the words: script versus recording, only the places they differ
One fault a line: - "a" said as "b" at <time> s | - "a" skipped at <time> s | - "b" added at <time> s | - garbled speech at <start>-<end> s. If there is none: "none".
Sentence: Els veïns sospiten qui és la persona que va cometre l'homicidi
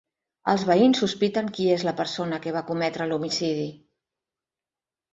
none